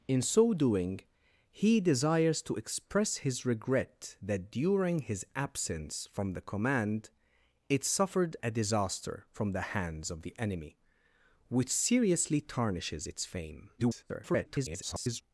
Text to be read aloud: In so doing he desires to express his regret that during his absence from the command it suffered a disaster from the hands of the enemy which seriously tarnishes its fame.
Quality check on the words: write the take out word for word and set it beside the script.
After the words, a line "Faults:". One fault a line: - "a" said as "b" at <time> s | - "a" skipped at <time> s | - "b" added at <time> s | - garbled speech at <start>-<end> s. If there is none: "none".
In so doing he desires to express his regret that during his absence from the command it suffered a disaster from the hands of the enemy which seriously tarnishes its fame. [garbled]
Faults:
- garbled speech at 13.8-15.2 s